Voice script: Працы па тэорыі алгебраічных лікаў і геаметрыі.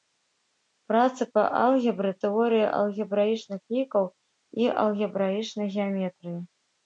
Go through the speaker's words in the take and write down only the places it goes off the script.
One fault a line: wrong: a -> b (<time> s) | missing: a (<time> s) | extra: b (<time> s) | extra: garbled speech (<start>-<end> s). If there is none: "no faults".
extra: алгебры (1.6 s)
extra: алгебраічнай (4.9 s)